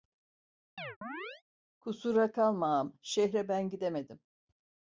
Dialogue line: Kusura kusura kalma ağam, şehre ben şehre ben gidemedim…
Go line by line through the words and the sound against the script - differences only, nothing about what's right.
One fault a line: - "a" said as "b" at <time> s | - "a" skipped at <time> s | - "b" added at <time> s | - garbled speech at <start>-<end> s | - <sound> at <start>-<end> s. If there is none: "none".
- chirp at 0.8-1.4 s
- "kusura" skipped at 2.3 s
- "şehre ben" skipped at 3.7 s